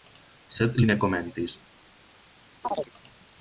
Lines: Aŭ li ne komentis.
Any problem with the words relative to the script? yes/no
yes